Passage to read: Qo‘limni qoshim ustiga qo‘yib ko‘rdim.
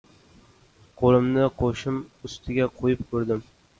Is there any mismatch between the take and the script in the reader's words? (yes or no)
no